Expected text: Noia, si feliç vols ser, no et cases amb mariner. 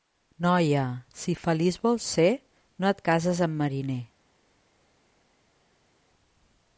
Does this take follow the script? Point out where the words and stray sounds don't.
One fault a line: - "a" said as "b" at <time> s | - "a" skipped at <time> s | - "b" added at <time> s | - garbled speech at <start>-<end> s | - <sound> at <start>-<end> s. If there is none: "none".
none